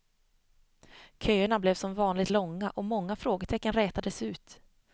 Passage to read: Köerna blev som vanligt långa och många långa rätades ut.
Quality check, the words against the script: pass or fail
fail